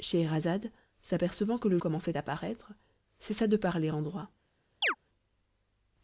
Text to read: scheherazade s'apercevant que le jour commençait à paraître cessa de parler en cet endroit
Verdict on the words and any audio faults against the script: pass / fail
fail